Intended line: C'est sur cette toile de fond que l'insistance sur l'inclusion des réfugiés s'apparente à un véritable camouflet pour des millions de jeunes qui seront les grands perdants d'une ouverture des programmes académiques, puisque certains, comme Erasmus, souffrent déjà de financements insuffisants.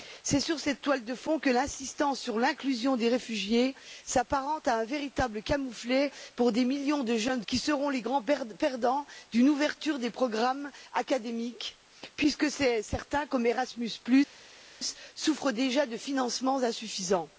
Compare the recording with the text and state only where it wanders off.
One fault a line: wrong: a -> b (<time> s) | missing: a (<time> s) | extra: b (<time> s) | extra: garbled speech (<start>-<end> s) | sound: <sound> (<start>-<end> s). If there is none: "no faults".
no faults